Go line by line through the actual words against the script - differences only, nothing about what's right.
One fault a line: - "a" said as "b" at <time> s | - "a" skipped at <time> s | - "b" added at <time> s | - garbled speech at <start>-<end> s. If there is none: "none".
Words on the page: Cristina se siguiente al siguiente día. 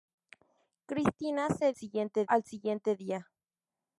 none